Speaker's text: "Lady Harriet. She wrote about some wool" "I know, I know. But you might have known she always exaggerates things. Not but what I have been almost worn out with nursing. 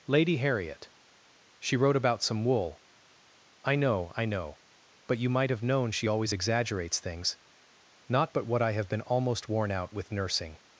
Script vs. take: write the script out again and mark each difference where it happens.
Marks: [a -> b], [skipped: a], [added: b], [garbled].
"Lady Harriet. She wrote about some wool" "I know, I know. But you might have known she always exaggerates things. Not but what I have been almost worn out with nursing.